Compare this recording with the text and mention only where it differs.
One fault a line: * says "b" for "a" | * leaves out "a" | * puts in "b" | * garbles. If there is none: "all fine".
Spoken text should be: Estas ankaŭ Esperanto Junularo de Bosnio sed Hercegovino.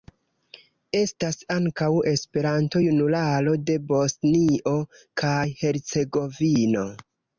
* says "kaj" for "sed"